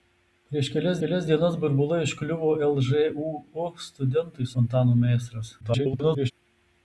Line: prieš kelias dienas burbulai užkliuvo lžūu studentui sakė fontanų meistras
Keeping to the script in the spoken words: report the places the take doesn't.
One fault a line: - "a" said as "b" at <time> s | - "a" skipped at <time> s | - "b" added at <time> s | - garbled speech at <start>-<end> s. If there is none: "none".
- "kelias" added at 1.0 s
- "sakė" skipped at 4.5 s
- garbled speech at 5.6-6.3 s